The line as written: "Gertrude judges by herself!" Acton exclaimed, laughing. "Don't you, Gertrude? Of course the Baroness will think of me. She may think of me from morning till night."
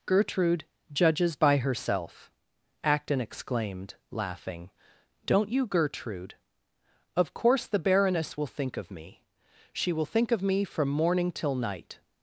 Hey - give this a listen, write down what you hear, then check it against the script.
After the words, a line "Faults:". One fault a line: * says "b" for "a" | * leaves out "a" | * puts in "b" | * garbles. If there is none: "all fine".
"Gertrude judges by herself!" Acton exclaimed, laughing. "Don't you, Gertrude? Of course the Baroness will think of me. She will think of me from morning till night."
Faults:
* says "will" for "may"